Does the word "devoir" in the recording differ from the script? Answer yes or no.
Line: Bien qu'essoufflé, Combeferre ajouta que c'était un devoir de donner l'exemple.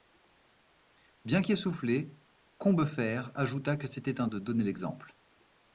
yes